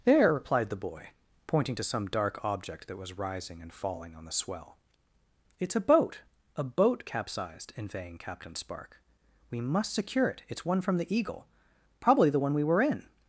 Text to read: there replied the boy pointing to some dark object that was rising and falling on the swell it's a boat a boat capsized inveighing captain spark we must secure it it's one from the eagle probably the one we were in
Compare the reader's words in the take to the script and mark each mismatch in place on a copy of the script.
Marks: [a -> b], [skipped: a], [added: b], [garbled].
there replied the boy pointing to some dark object that was rising and falling on the swell it's a boat a boat capsized inveighing captain spark we must secure it it's one from the eagle probably the one we were in